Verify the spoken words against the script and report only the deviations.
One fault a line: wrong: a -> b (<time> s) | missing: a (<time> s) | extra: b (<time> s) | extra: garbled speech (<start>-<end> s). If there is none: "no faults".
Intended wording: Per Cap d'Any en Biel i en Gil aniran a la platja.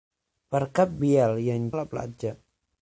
missing: d'Any en (0.9 s)
missing: Gil aniran (1.7 s)